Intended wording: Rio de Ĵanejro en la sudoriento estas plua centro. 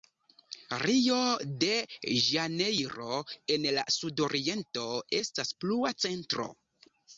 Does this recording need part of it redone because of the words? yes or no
no